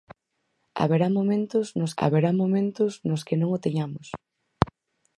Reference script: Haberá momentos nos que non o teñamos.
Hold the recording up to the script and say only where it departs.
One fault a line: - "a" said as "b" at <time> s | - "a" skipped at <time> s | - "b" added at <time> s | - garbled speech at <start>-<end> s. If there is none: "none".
- "haberá momentos nos" added at 2.0 s